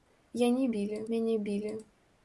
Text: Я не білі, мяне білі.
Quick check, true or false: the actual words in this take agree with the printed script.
true